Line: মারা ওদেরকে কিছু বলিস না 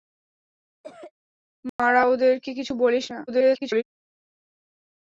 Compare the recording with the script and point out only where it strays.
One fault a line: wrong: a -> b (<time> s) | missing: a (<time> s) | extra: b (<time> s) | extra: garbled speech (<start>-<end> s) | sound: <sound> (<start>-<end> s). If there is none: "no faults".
sound: cough (0.8-1.1 s)
sound: dropout (1.7-1.8 s)
extra: garbled speech (3.3-3.8 s)